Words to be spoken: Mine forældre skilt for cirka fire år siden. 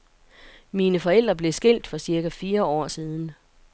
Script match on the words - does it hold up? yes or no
no